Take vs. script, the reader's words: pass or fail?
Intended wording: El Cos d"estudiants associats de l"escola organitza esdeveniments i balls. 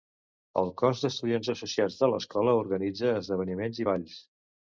pass